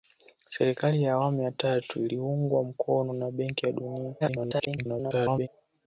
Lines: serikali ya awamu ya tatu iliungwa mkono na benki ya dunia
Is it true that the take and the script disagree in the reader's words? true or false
true